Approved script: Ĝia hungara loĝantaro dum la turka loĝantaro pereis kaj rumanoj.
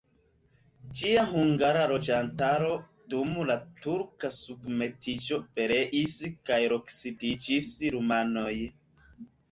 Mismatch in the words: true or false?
true